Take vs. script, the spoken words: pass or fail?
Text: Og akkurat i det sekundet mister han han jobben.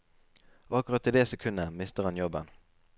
fail